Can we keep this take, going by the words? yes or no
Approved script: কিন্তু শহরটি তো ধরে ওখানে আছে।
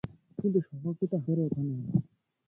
yes